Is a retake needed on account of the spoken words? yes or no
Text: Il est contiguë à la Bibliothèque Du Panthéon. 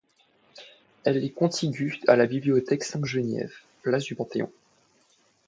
yes